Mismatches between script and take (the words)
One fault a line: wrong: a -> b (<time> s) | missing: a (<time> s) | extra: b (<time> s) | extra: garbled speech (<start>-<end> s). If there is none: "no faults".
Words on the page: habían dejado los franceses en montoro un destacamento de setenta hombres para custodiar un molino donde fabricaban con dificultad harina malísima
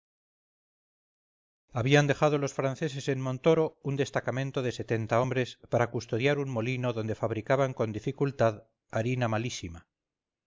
no faults